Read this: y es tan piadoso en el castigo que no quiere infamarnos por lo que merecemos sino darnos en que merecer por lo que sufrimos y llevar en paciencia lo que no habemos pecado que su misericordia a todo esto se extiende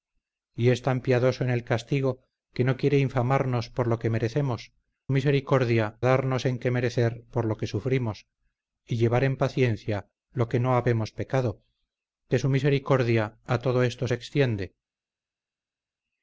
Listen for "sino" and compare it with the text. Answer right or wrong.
wrong